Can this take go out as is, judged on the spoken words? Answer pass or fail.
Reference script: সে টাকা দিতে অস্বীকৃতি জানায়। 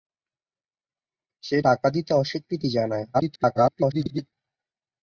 fail